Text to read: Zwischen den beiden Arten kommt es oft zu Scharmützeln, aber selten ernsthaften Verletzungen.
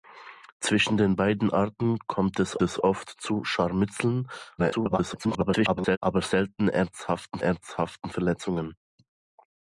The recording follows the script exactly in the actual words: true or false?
false